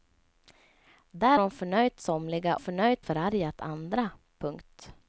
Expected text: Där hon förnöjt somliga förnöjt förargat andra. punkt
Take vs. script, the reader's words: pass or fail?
pass